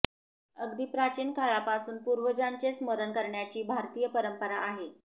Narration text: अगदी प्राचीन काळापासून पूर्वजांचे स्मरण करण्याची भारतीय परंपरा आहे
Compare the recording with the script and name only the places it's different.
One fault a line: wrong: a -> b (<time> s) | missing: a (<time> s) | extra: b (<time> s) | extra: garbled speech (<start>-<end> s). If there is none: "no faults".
no faults